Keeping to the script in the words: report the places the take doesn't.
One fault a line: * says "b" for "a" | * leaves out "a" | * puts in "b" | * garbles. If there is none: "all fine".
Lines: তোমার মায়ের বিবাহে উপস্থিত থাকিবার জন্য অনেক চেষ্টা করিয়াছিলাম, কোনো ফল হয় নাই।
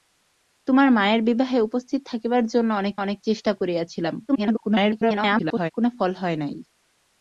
* puts in "অনেক"
* garbles